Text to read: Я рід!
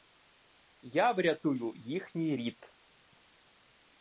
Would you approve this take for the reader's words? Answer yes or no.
no